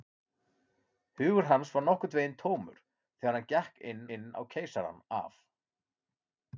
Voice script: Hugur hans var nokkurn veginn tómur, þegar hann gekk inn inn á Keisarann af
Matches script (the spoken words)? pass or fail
pass